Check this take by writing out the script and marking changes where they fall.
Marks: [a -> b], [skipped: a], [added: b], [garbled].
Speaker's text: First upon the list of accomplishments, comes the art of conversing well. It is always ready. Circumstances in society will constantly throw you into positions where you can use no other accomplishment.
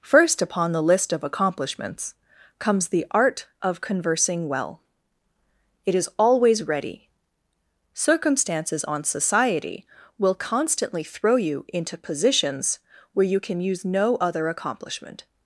First upon the list of accomplishments, comes the art of conversing well. It is always ready. Circumstances [in -> on] society will constantly throw you into positions where you can use no other accomplishment.